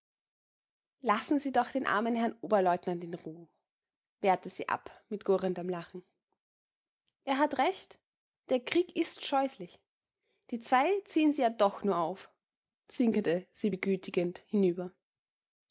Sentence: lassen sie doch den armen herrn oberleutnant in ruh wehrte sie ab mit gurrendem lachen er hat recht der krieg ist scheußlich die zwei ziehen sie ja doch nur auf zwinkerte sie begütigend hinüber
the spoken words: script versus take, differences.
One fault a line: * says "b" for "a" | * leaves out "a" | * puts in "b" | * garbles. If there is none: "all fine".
all fine